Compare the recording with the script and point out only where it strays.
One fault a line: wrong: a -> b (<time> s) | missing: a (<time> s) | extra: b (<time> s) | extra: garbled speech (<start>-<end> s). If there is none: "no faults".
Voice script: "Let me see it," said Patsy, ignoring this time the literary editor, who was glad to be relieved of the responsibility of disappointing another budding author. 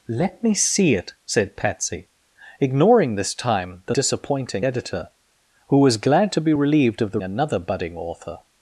wrong: literary -> disappointing (3.9 s)
missing: responsibility of disappointing (7.2 s)